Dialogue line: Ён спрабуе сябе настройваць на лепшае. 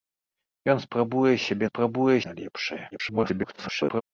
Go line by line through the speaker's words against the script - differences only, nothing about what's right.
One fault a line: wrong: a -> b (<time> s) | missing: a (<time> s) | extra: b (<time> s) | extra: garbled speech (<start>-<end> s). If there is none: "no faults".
wrong: настройваць -> спрабуе (1.7 s)
extra: garbled speech (2.9-4.0 s)